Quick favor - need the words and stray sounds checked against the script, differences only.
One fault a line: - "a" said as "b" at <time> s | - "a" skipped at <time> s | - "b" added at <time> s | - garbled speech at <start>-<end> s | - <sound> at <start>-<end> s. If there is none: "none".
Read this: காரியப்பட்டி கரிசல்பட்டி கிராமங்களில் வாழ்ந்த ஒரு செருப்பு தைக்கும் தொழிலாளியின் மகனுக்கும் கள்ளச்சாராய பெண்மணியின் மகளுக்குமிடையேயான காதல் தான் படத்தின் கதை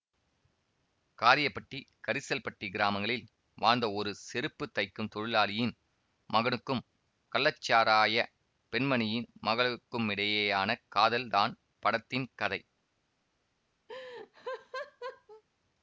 - laugh at 13.9-15.4 s